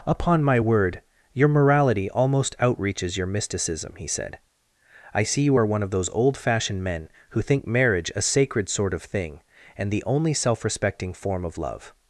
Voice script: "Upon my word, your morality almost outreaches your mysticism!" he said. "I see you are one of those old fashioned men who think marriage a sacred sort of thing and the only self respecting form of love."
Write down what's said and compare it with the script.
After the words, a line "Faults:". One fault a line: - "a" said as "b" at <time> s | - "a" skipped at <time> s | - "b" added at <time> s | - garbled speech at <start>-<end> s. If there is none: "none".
"Upon my word, your morality almost outreaches your mysticism!" he said. "I see you are one of those old fashioned men who think marriage a sacred sort of thing and the only self respecting form of love."
Faults:
none